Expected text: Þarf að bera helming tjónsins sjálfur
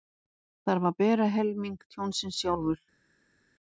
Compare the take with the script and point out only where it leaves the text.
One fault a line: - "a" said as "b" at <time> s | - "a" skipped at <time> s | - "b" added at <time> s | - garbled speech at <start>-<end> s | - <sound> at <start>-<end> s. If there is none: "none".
none